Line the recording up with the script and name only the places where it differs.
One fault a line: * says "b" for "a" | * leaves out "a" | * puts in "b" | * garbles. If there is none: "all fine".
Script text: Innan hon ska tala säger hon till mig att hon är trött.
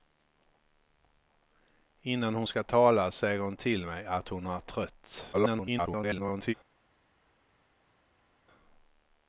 * garbles